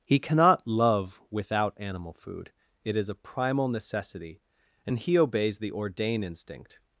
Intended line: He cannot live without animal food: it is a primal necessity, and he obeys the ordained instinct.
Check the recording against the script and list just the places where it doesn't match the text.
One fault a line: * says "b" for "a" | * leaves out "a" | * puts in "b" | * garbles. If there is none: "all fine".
* says "love" for "live"
* says "ordain" for "ordained"